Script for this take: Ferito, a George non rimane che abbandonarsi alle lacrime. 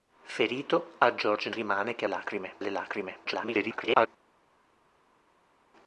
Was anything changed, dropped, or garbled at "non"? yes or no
yes